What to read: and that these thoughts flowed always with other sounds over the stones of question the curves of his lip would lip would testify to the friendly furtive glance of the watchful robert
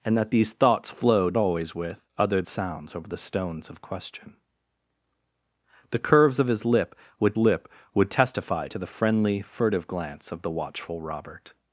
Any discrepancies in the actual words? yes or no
no